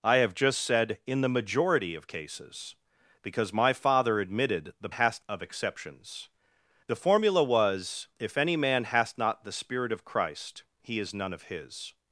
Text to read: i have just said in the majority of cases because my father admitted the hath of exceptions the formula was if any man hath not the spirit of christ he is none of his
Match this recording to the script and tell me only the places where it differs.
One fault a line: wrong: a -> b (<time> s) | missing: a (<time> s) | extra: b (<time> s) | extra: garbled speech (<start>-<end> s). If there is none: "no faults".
no faults